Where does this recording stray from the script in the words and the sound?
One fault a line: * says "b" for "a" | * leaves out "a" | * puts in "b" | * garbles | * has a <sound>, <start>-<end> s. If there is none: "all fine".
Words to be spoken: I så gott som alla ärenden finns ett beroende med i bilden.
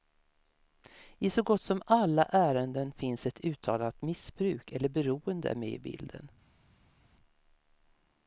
* puts in "uttalat missbruk eller"